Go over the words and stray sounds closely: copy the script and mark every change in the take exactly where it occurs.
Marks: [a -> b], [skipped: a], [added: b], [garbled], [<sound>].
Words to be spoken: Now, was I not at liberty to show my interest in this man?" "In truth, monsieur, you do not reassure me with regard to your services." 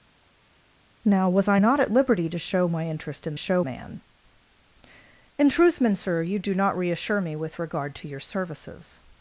Now, was I not at liberty to show my interest in [this -> show] man?" "In truth, monsieur, you do not reassure me with regard to your services."